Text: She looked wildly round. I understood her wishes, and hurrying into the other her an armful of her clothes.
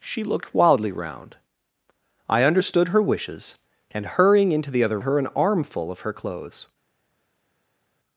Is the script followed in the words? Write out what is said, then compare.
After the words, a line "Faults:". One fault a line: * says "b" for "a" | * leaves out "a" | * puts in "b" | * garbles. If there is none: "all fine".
She looked wildly round. I understood her wishes, and hurrying into the other her an armful of her clothes.
Faults:
all fine